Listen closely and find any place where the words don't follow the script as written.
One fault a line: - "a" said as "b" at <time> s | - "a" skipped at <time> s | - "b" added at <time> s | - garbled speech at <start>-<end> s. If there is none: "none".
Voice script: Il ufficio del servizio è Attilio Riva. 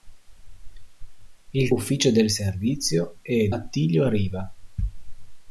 none